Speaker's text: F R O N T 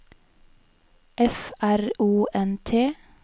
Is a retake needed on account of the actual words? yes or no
no